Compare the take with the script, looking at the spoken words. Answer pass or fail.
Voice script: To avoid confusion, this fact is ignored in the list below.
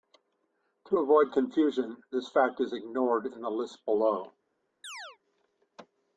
pass